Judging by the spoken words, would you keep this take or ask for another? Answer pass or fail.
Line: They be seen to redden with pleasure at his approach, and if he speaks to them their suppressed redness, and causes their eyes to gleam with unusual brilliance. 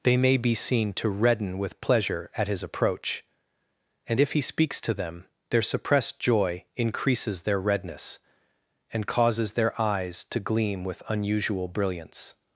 fail